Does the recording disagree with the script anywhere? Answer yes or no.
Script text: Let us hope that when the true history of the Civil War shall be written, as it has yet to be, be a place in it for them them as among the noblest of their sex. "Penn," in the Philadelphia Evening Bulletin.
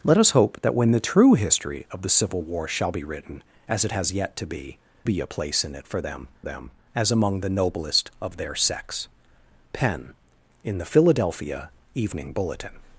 no